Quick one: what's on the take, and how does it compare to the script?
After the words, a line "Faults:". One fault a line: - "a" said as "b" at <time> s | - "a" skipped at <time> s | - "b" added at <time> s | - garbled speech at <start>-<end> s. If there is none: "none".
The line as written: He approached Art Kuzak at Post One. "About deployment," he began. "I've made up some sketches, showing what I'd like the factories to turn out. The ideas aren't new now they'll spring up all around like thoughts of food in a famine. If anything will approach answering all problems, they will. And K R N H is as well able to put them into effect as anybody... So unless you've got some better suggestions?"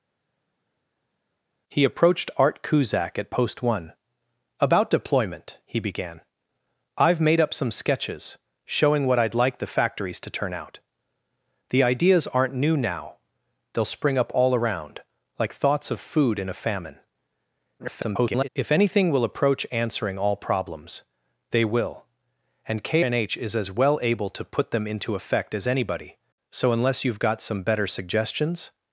He approached Art Kuzak at Post One. "About deployment," he began. "I've made up some sketches, showing what I'd like the factories to turn out. The ideas aren't new now they'll spring up all around like thoughts of food in a famine. [garbled] If anything will approach answering all problems, they will. And K N H is as well able to put them into effect as anybody... So unless you've got some better suggestions?"
Faults:
- garbled speech at 17.8-18.5 s
- "R" skipped at 23.1 s